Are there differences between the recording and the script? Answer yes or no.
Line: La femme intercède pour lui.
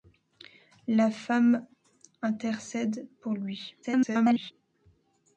yes